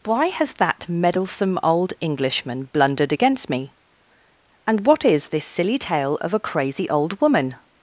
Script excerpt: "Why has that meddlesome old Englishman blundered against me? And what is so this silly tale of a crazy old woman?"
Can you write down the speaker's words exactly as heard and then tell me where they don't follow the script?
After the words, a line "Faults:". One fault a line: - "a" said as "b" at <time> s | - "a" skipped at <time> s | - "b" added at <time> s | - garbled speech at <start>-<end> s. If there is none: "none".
"Why has that meddlesome old Englishman blundered against me? And what is this silly tale of a crazy old woman?"
Faults:
- "so" skipped at 5.3 s